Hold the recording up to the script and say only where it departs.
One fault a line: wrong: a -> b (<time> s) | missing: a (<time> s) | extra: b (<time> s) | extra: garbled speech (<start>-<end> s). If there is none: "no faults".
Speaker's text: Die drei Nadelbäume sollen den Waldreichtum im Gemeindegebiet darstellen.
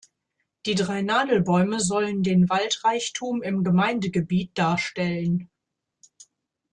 no faults